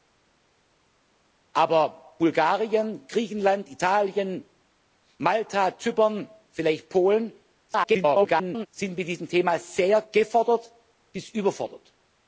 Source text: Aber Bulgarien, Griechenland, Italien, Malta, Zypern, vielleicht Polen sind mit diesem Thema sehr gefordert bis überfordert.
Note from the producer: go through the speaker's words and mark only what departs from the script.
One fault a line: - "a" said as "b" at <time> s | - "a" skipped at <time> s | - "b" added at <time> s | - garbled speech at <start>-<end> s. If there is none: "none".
- garbled speech at 7.7-8.7 s